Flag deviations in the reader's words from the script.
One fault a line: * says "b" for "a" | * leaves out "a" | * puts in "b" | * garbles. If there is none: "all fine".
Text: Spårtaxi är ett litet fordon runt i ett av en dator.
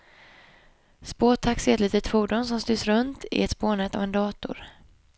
* puts in "som styrs"
* puts in "spårnät"